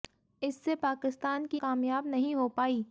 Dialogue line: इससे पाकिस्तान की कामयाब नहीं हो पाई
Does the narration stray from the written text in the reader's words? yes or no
no